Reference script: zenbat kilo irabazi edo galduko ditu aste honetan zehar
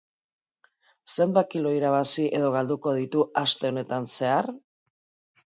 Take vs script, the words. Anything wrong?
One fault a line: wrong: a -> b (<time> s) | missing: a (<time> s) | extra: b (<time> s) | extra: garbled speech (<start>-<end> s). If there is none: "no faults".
no faults